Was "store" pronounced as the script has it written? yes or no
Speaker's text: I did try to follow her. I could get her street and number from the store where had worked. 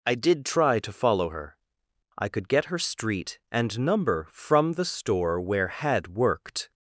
yes